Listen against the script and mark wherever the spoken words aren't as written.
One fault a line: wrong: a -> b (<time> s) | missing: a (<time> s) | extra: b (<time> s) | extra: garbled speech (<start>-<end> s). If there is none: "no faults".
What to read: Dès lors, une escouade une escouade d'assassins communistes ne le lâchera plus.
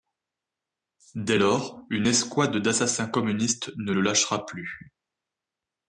missing: une escouade (2.6 s)